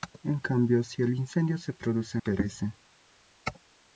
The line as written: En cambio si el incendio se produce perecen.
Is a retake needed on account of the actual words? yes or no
no